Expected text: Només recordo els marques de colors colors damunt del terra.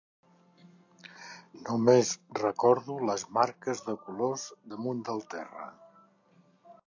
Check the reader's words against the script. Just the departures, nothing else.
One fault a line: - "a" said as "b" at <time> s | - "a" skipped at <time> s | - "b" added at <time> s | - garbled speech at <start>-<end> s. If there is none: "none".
- "els" said as "les" at 3.1 s
- "colors" skipped at 4.5 s